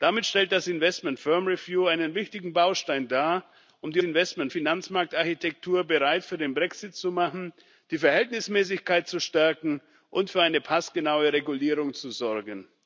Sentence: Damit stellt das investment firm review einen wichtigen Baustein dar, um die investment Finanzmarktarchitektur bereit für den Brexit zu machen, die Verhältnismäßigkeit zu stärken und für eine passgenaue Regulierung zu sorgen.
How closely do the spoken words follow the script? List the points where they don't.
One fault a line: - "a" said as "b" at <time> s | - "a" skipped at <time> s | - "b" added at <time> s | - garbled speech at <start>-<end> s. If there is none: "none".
none